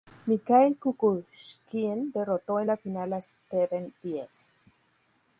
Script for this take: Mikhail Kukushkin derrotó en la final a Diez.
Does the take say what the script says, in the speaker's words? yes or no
no